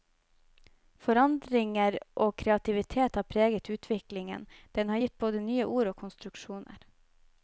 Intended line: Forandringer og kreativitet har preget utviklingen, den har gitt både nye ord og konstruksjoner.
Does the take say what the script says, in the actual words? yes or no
yes